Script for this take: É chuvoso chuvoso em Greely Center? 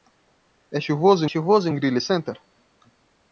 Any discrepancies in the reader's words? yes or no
no